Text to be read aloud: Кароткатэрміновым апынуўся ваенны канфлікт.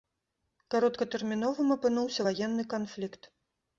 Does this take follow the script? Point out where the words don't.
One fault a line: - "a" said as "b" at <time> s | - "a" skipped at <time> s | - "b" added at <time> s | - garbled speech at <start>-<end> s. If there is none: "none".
none